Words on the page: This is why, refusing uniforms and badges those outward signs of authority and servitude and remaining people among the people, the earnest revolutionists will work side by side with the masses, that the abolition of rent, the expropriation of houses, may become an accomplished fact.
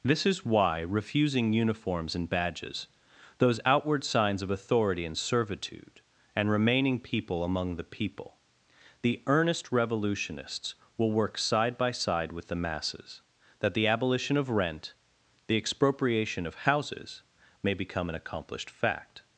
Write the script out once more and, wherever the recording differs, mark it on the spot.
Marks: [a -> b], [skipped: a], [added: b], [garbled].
This is why, refusing uniforms and badges those outward signs of authority and servitude and remaining people among the people, the earnest revolutionists will work side by side with the masses, that the abolition of rent, the expropriation of houses, may become an accomplished fact.